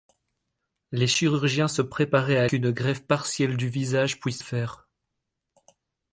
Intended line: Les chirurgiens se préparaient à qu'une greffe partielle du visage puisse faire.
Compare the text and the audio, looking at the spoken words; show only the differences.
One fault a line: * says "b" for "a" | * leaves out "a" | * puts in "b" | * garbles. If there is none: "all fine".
all fine